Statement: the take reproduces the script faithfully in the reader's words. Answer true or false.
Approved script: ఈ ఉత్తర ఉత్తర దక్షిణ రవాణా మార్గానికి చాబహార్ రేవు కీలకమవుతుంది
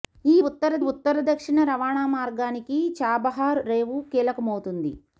true